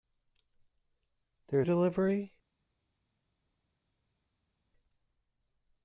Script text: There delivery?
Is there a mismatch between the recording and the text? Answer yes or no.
no